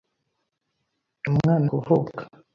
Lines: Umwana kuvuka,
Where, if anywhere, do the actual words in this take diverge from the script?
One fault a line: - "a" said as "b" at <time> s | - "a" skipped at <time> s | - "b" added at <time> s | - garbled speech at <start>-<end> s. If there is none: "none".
none